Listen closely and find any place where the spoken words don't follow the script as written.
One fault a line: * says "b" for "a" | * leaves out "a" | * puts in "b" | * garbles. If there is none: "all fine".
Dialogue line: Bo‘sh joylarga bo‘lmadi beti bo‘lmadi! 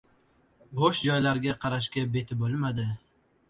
* says "qarashga" for "bo‘lmadi"